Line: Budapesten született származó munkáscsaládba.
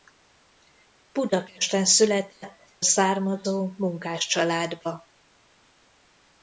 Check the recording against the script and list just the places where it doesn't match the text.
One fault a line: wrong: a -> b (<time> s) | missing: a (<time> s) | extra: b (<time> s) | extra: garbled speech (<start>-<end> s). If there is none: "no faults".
no faults